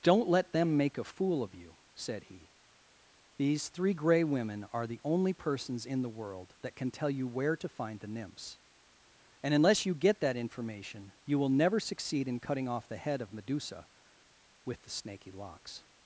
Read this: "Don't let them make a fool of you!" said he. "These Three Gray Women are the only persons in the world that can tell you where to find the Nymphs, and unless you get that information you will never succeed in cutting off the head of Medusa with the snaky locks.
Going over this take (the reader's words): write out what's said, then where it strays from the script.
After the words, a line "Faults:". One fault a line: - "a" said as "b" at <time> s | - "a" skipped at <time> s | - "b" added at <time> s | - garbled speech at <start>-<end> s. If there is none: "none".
"Don't let them make a fool of you!" said he. "These Three Gray Women are the only persons in the world that can tell you where to find the Nymphs, and unless you get that information you will never succeed in cutting off the head of Medusa with the snaky locks.
Faults:
none